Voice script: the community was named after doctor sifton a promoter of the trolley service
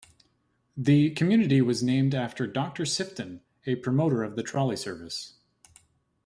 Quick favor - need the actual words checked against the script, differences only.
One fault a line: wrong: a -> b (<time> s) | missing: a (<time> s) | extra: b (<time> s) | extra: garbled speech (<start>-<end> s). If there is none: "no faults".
no faults